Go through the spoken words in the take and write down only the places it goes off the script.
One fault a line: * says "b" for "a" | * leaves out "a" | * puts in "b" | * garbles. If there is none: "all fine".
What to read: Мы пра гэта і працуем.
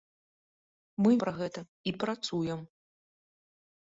all fine